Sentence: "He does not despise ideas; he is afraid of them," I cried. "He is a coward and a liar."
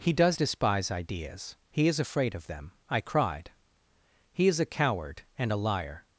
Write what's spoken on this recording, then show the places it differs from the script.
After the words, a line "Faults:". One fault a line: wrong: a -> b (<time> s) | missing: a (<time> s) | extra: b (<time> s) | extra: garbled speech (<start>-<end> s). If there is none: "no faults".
"He does despise ideas; he is afraid of them," I cried. "He is a coward and a liar."
Faults:
missing: not (0.3 s)